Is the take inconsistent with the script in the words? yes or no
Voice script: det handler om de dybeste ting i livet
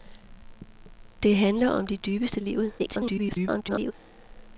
yes